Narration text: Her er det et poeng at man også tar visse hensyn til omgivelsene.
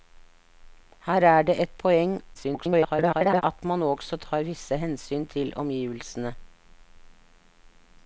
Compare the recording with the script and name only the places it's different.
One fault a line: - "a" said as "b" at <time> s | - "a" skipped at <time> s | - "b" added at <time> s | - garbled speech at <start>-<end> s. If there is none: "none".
- garbled speech at 2.3-3.4 s